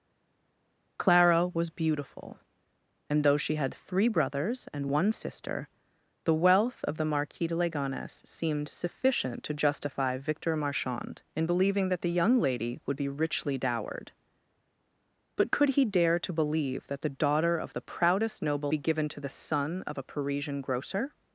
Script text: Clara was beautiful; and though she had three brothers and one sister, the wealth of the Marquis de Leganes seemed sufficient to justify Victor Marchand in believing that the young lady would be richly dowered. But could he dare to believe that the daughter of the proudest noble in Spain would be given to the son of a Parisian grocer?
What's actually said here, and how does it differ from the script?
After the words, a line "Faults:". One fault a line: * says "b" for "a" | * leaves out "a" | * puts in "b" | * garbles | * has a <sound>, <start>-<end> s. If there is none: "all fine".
Clara was beautiful; and though she had three brothers and one sister, the wealth of the Marquis de Leganes seemed sufficient to justify Victor Marchand in believing that the young lady would be richly dowered. But could he dare to believe that the daughter of the proudest noble be given to the son of a Parisian grocer?
Faults:
* leaves out "in Spain would"